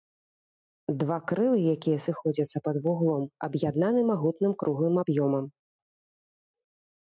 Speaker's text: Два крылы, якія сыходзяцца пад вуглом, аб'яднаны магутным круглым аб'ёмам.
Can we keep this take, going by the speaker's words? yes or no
yes